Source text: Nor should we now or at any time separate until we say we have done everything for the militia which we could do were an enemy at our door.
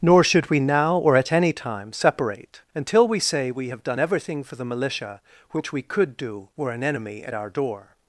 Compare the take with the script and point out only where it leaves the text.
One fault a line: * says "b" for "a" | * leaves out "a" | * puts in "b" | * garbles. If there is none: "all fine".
all fine